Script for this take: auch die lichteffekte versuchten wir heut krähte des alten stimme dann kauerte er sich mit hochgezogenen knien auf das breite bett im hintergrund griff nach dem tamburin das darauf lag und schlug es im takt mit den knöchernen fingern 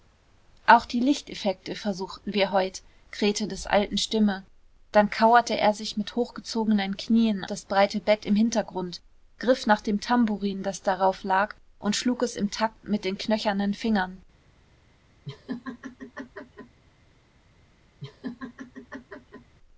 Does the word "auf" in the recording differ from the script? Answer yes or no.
yes